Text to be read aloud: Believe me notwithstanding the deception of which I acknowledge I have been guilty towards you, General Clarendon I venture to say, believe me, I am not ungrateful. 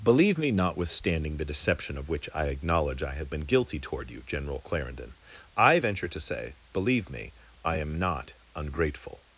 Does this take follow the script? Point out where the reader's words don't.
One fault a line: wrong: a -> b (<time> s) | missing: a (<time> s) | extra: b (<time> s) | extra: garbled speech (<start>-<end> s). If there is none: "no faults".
wrong: towards -> toward (3.8 s)